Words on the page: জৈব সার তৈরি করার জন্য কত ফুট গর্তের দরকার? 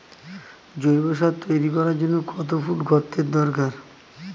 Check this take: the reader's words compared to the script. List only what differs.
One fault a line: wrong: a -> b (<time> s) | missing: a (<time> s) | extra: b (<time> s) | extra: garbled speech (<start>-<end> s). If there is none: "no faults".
no faults